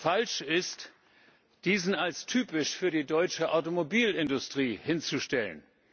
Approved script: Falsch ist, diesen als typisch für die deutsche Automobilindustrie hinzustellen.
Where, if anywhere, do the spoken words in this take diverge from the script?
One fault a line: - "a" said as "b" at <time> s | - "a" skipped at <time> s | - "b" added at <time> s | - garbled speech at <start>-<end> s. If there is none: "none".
none